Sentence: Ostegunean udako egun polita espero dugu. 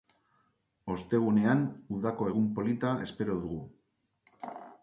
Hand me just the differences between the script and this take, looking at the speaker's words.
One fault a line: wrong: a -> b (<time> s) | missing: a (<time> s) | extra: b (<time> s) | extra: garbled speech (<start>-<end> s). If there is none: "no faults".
no faults